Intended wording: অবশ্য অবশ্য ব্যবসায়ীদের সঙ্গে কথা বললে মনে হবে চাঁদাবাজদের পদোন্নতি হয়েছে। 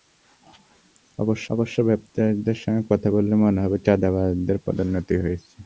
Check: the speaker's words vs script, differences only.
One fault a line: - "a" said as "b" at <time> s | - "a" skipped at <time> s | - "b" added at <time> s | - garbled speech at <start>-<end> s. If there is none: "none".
none